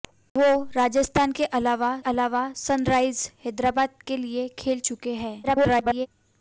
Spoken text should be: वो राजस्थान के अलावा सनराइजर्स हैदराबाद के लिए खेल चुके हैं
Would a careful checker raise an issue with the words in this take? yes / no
yes